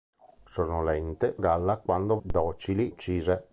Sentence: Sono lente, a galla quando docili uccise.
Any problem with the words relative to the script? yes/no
no